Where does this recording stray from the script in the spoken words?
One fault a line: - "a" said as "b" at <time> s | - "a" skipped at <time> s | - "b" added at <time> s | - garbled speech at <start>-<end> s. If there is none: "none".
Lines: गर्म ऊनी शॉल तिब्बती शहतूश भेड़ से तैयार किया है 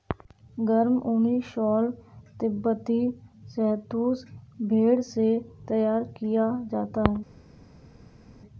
- "जाता" added at 6.7 s